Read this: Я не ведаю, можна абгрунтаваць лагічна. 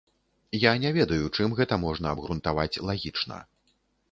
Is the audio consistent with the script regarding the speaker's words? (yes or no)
no